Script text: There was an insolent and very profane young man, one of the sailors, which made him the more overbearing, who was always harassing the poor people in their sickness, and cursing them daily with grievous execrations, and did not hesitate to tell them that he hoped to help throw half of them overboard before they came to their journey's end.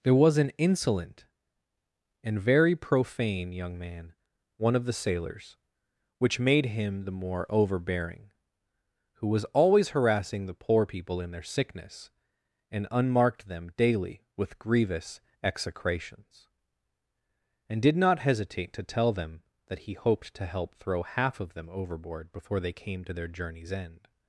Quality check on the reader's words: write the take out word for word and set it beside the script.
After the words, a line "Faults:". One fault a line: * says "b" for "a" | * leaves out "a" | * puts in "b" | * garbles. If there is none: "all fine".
There was an insolent and very profane young man, one of the sailors, which made him the more overbearing, who was always harassing the poor people in their sickness, and unmarked them daily with grievous execrations, and did not hesitate to tell them that he hoped to help throw half of them overboard before they came to their journey's end.
Faults:
* says "unmarked" for "cursing"